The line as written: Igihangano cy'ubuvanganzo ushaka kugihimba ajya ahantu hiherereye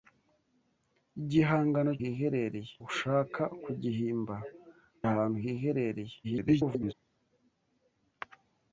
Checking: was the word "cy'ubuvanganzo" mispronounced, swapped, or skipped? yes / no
yes